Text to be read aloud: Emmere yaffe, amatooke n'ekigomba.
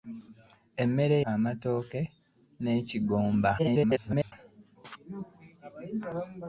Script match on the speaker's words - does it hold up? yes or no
no